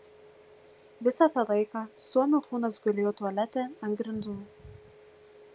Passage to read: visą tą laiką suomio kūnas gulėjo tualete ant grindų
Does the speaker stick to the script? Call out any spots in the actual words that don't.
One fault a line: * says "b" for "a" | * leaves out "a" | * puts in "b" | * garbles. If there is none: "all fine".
all fine